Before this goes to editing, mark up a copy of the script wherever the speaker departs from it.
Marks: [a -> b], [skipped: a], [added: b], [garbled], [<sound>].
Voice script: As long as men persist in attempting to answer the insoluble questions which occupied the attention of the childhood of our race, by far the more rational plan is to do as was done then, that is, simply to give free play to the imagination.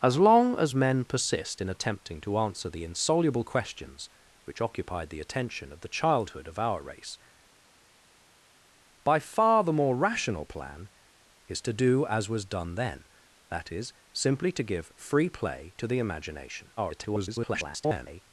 As long as men persist in attempting to answer the insoluble questions which occupied the attention of the childhood of our race, by far the more rational plan is to do as was done then, that is, simply to give free play to the imagination. [garbled]